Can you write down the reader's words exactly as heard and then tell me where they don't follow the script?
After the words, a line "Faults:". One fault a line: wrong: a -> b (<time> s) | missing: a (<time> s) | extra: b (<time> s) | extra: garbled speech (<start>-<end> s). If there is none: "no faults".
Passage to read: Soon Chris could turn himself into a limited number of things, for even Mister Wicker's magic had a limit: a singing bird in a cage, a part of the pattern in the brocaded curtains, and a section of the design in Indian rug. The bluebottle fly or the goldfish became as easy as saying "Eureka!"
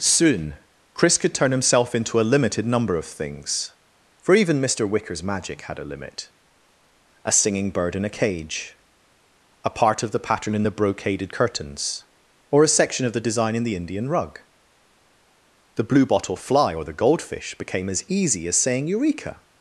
Soon Chris could turn himself into a limited number of things, for even Mister Wicker's magic had a limit: a singing bird in a cage, a part of the pattern in the brocaded curtains, or a section of the design in the Indian rug. The bluebottle fly or the goldfish became as easy as saying "Eureka!"
Faults:
wrong: and -> or (12.5 s)
extra: the (13.6 s)